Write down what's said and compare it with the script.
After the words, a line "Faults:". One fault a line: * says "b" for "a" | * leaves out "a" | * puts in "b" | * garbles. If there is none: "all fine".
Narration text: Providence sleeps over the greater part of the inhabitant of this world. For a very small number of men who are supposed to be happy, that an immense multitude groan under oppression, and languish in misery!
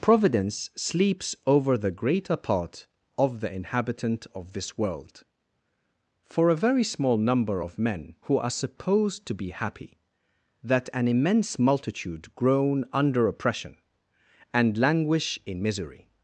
Providence sleeps over the greater part of the inhabitant of this world. For a very small number of men who are supposed to be happy, that an immense multitude groan under oppression, and languish in misery!
Faults:
all fine